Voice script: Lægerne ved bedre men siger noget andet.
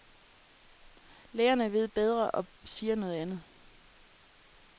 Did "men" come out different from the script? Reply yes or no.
yes